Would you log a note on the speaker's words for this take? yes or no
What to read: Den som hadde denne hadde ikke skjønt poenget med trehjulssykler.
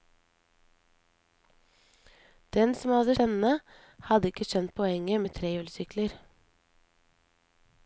no